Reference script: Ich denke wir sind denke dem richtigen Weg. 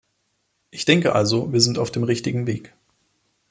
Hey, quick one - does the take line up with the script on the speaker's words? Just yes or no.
no